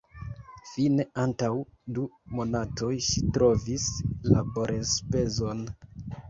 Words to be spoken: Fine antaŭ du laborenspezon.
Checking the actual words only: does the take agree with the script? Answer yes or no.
no